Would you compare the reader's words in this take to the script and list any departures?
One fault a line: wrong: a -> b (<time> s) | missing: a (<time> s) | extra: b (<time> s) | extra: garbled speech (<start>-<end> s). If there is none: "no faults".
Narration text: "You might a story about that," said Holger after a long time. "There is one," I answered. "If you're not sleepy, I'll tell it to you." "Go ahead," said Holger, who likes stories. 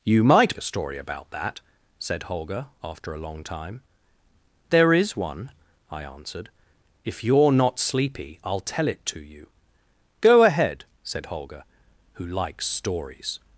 no faults